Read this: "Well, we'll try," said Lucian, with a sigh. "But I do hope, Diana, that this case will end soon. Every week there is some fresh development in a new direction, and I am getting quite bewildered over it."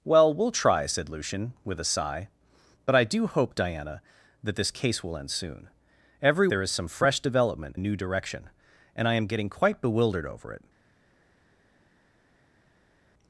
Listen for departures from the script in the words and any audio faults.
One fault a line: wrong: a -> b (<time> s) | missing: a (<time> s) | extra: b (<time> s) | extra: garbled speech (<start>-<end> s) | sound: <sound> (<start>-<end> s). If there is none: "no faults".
missing: week (6.5 s)
missing: in (7.8 s)